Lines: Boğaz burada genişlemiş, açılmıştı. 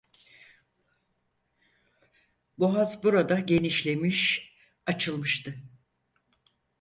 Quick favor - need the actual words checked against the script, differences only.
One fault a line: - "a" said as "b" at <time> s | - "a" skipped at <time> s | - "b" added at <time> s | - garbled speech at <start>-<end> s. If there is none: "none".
none